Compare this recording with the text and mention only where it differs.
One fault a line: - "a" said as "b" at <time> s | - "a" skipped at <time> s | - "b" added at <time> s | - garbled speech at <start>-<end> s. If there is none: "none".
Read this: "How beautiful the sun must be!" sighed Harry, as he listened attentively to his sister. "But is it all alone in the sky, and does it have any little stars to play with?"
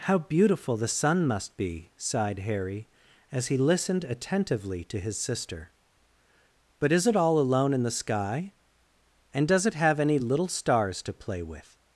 none